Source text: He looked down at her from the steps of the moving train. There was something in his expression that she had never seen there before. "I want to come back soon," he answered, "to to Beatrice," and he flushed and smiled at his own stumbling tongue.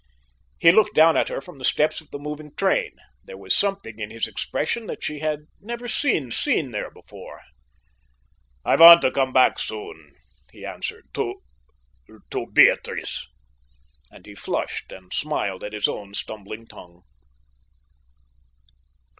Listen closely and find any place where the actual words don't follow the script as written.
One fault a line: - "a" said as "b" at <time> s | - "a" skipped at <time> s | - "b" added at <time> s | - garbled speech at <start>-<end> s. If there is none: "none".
- "seen" added at 6.3 s